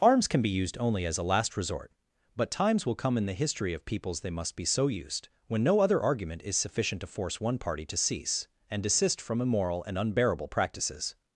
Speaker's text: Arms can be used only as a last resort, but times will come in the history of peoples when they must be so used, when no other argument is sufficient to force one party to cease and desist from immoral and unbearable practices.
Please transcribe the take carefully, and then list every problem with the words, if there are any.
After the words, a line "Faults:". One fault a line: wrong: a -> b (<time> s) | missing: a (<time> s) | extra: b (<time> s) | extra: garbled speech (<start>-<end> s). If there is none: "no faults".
Arms can be used only as a last resort, but times will come in the history of peoples they must be so used, when no other argument is sufficient to force one party to cease and desist from immoral and unbearable practices.
Faults:
missing: when (4.2 s)